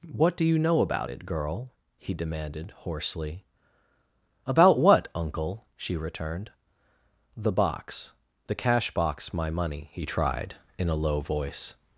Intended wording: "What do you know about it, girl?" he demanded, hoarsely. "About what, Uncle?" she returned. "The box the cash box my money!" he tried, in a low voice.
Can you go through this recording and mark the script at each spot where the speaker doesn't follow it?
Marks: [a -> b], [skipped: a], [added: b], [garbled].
"What do you know about it, girl?" he demanded, hoarsely. "About what, Uncle?" she returned. "The box the cash box my money!" he tried, in a low voice.